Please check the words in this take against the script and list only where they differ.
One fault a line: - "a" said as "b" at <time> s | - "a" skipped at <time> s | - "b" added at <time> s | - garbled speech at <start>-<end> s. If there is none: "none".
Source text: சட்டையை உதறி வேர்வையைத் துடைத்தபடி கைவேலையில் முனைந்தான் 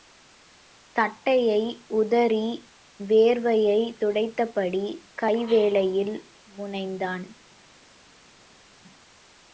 none